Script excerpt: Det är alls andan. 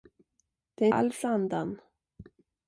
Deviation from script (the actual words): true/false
false